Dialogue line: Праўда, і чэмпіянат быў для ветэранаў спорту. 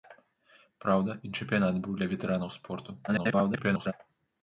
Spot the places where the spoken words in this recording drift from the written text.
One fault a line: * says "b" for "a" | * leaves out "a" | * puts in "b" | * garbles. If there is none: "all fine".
* garbles